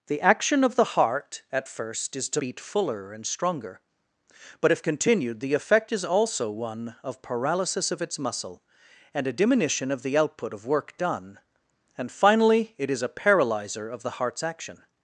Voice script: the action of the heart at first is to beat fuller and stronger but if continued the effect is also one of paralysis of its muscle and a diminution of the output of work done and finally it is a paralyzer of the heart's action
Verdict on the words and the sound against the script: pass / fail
pass